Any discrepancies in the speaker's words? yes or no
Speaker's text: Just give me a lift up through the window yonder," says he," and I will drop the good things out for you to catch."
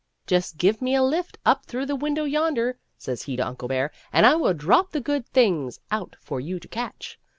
yes